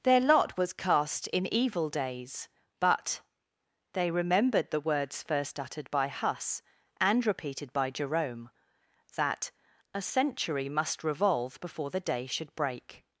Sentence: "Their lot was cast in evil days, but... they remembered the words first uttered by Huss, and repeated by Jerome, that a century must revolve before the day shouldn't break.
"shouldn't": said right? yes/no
no